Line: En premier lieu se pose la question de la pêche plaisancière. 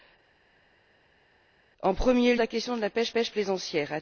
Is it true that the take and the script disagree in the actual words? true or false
true